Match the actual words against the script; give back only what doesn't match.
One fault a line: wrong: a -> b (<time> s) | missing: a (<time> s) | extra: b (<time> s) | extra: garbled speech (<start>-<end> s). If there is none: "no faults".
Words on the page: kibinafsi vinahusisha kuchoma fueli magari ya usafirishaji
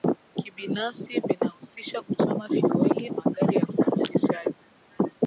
no faults